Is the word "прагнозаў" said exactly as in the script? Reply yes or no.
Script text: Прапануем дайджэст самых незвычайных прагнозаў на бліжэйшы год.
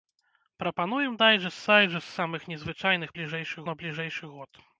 no